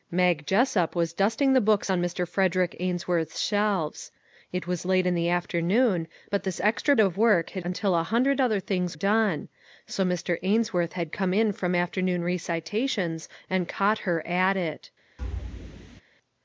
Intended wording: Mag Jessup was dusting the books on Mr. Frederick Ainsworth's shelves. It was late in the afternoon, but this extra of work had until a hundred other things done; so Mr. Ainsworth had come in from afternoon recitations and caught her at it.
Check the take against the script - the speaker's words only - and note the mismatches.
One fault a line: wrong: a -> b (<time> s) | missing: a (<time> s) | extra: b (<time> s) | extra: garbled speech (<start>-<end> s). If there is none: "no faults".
no faults